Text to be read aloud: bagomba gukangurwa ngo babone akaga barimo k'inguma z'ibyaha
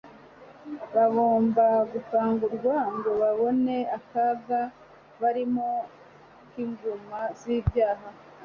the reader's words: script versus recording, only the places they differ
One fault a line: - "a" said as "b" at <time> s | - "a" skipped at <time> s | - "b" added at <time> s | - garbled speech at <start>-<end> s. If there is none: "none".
none